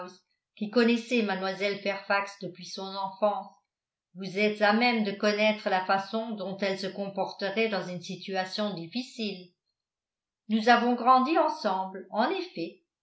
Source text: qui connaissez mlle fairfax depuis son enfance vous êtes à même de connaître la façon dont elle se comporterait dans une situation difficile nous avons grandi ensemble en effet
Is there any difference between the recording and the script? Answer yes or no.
no